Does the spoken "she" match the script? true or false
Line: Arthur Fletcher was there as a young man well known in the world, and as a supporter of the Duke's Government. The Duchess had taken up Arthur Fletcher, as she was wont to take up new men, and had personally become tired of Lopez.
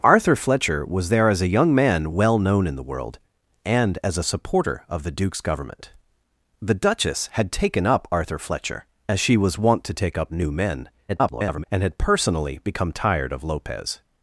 true